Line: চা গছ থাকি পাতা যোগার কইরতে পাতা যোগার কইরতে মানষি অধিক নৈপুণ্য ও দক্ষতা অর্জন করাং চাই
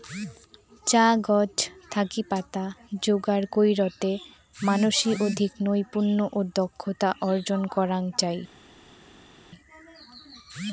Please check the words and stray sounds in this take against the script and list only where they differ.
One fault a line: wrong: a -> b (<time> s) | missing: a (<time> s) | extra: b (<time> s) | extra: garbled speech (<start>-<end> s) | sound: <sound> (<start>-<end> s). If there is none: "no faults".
missing: পাতা যোগার কইরতে (4.1 s)